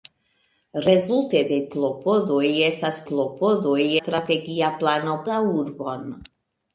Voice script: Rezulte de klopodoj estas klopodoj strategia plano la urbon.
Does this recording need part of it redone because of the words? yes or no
no